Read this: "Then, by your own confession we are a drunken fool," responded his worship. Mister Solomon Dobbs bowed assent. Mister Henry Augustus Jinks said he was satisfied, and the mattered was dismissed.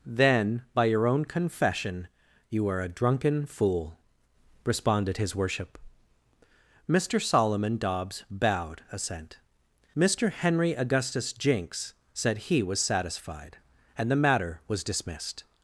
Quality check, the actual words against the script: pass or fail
fail